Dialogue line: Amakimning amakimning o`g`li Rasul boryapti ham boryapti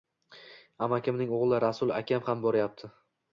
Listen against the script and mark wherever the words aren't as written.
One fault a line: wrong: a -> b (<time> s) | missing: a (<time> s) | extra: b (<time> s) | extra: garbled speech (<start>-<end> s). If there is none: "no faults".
missing: amakimning (1.3 s)
wrong: boryapti -> akam (2.0 s)